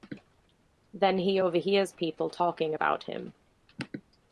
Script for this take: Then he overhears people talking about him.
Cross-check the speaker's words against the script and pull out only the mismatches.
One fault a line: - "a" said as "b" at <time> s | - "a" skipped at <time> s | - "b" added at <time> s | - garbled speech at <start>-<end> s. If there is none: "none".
none